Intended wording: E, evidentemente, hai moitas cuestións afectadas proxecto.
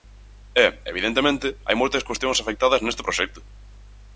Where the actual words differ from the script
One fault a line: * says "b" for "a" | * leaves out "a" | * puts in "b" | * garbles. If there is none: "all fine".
* puts in "neste"